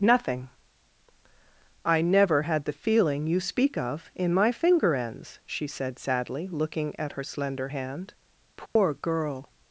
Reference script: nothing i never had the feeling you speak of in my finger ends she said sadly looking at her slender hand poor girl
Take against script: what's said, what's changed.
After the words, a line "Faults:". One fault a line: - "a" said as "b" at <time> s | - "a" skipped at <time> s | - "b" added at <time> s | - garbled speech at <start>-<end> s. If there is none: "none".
nothing i never had the feeling you speak of in my finger ends she said sadly looking at her slender hand poor girl
Faults:
none